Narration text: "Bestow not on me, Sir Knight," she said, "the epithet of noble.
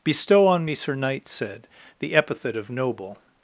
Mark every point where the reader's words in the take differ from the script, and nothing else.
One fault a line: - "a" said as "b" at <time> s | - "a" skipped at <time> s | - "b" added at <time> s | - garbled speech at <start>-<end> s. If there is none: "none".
- "not" skipped at 0.5 s
- "she" skipped at 1.3 s